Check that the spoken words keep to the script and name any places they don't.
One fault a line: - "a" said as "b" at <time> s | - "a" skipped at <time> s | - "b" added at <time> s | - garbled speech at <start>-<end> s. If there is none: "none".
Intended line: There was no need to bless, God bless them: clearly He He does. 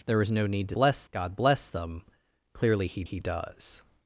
none